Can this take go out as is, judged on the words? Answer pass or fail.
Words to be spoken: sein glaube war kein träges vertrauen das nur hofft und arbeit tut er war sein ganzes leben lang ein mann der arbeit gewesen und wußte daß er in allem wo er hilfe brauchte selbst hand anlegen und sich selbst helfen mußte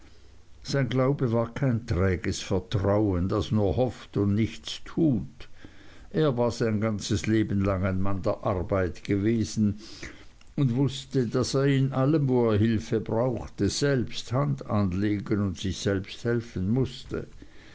fail